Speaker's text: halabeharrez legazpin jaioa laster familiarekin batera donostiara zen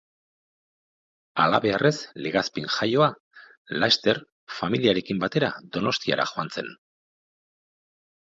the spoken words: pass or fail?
fail